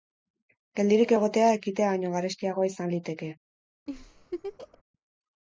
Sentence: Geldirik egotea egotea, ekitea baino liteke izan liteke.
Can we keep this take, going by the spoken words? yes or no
no